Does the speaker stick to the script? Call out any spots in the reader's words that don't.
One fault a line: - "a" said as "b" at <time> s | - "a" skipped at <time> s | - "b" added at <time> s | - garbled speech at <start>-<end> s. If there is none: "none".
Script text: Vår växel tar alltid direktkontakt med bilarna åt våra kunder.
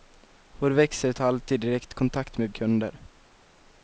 - "bilarna åt våra" skipped at 2.5 s